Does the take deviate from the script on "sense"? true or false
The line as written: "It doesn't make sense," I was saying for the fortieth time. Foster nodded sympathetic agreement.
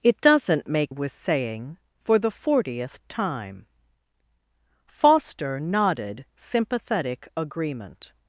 true